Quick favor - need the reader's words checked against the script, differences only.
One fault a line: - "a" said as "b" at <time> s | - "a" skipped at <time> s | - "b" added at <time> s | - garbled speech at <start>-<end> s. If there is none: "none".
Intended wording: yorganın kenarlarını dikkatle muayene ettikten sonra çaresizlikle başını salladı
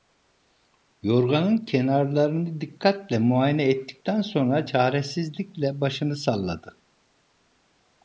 none